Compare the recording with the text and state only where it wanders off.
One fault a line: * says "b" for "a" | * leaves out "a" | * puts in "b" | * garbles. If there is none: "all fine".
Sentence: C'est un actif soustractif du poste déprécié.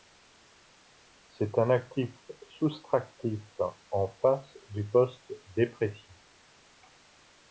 * puts in "en face"